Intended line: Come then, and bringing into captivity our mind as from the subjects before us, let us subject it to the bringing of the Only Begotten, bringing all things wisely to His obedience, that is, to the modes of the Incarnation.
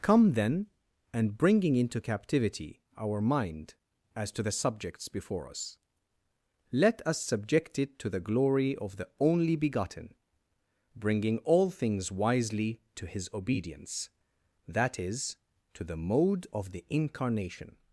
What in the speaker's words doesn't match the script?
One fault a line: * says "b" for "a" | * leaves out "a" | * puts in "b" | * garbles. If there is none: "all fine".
* says "to" for "from"
* says "glory" for "bringing"
* says "mode" for "modes"